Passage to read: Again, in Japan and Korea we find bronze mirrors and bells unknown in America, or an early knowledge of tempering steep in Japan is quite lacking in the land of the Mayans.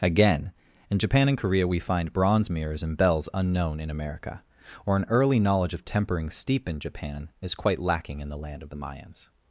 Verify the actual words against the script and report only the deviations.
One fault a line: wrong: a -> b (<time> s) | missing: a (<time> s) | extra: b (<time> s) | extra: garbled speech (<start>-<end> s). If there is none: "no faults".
no faults